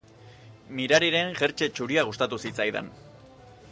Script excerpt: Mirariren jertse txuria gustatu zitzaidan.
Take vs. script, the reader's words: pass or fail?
pass